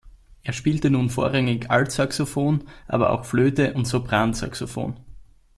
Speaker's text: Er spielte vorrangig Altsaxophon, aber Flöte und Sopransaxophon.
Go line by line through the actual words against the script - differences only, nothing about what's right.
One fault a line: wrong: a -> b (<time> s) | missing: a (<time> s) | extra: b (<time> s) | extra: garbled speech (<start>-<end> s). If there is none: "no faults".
extra: nun (0.9 s)
extra: auch (3.1 s)